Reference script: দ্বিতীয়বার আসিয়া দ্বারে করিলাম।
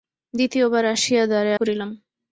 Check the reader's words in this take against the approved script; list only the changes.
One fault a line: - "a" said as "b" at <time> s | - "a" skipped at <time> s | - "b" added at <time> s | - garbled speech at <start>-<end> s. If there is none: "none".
none